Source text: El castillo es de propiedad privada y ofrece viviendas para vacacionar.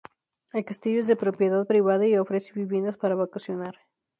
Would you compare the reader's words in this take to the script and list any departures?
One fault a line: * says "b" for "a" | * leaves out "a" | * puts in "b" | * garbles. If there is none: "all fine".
all fine